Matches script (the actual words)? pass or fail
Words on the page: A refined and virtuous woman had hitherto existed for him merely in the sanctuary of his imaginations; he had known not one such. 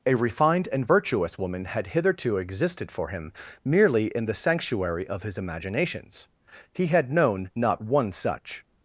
pass